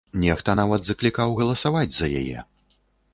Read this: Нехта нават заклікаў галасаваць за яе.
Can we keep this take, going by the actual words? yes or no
yes